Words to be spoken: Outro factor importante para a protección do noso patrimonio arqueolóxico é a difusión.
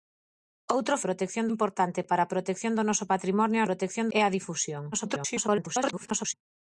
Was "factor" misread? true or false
true